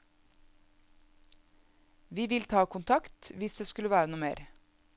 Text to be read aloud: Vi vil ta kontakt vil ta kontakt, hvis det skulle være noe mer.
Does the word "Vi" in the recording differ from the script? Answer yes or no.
no